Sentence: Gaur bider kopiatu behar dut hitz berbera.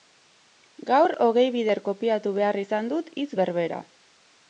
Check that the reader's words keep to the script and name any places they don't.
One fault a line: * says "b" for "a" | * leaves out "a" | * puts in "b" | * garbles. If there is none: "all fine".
* puts in "hogei"
* puts in "izan"